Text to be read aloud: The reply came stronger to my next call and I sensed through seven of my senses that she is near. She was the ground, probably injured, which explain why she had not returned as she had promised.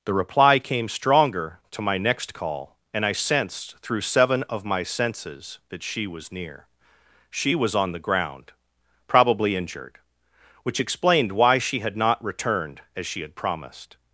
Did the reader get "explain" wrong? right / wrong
wrong